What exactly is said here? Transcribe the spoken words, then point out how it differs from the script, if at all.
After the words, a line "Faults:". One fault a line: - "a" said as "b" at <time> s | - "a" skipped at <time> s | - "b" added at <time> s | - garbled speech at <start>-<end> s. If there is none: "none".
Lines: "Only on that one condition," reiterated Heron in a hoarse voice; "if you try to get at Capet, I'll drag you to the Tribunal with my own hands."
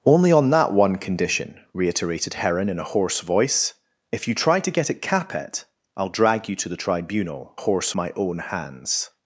"Only on that one condition," reiterated Heron in a hoarse voice; "if you try to get at Capet, I'll drag you to the Tribunal hoarse my own hands."
Faults:
- "with" said as "hoarse" at 7.6 s